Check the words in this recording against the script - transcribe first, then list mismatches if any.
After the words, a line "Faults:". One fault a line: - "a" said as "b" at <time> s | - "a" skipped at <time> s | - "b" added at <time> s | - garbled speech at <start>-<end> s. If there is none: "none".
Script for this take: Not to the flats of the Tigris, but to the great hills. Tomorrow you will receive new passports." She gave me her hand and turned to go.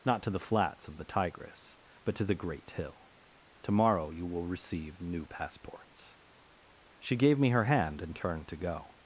Not to the flats of the Tigris, but to the great hill. Tomorrow you will receive new passports." She gave me her hand and turned to go.
Faults:
- "hills" said as "hill" at 2.7 s